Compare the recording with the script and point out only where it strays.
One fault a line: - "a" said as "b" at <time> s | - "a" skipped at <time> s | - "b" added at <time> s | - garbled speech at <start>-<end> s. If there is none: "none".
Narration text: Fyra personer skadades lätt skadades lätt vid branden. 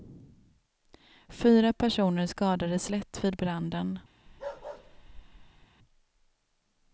- "skadades lätt" skipped at 3.2 s